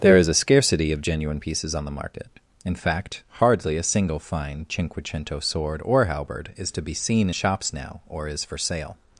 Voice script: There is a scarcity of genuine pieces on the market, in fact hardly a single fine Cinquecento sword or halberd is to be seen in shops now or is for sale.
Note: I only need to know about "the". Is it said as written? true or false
true